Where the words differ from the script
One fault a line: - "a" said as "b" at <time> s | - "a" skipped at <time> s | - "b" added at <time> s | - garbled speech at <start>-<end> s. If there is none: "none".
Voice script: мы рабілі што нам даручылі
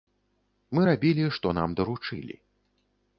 none